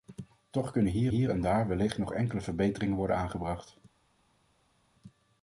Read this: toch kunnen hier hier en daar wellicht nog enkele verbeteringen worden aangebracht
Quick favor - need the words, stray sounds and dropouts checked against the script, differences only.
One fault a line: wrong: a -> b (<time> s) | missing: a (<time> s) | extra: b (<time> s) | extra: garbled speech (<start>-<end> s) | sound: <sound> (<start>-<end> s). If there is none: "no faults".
no faults